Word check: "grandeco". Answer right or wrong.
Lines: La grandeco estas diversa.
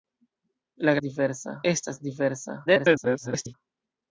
wrong